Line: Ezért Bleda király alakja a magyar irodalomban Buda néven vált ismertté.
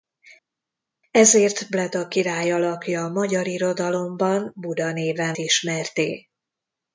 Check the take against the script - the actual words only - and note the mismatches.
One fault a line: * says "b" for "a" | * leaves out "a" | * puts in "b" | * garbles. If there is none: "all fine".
* leaves out "vált"